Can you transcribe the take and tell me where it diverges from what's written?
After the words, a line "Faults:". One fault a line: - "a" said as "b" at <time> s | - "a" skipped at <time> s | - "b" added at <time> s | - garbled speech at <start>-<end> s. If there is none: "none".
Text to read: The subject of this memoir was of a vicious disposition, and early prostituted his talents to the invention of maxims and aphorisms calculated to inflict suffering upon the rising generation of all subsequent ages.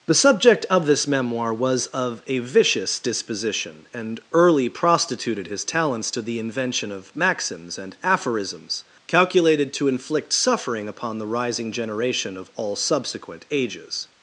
The subject of this memoir was of a vicious disposition, and early prostituted his talents to the invention of maxims and aphorisms calculated to inflict suffering upon the rising generation of all subsequent ages.
Faults:
none